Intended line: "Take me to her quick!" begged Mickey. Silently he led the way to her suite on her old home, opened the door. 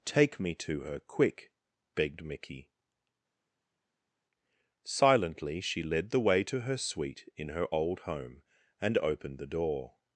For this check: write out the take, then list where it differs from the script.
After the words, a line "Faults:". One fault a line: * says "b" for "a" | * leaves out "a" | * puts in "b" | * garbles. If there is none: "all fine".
"Take me to her quick!" begged Mickey. Silently she led the way to her suite in her old home, and opened the door.
Faults:
* says "she" for "he"
* says "in" for "on"
* puts in "and"